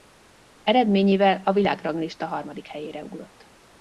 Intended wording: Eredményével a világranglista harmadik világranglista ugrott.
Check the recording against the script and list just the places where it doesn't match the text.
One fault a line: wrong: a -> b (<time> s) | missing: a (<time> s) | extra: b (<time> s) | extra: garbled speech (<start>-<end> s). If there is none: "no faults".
wrong: világranglista -> helyére (2.7 s)